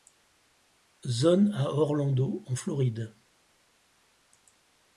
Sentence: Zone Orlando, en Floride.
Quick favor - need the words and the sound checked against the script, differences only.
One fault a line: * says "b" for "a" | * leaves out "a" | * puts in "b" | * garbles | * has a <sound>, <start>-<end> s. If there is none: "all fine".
* puts in "à"